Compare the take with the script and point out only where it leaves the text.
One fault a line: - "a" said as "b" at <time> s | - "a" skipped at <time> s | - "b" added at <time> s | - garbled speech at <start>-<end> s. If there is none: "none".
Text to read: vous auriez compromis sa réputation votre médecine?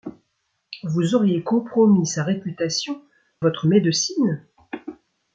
none